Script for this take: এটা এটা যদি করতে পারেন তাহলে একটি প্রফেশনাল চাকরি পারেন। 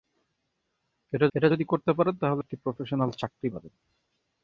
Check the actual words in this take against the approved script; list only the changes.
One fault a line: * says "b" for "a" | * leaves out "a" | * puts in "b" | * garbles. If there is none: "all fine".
all fine